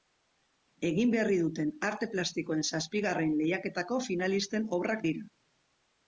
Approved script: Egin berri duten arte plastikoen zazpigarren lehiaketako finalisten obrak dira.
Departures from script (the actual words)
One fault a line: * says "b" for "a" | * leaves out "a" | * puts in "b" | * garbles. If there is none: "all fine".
all fine